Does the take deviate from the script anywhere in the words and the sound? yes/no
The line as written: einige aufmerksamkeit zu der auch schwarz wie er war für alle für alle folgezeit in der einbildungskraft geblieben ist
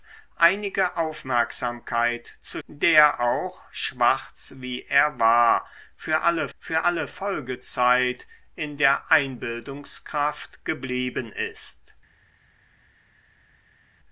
no